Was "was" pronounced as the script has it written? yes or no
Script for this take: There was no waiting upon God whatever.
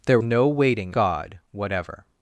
no